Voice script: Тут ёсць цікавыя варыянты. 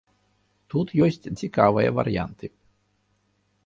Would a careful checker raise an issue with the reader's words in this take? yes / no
no